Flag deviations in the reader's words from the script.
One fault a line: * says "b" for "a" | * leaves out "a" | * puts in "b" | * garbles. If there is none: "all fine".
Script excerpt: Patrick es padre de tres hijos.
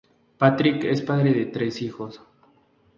all fine